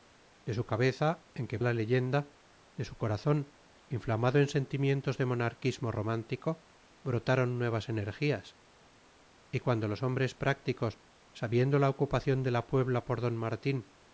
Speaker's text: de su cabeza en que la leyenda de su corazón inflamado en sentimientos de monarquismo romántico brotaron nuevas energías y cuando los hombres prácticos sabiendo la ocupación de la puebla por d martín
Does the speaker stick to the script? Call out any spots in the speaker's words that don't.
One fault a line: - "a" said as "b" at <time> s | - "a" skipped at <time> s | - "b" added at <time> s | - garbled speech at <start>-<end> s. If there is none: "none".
none